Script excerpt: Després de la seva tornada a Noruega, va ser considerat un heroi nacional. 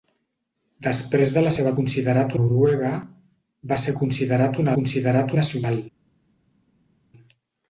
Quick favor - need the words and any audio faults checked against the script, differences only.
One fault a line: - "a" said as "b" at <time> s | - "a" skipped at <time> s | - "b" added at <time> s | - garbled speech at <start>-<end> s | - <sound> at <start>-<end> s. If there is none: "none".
- "tornada" said as "considerat" at 1.8 s
- "heroi" said as "considerat" at 4.8 s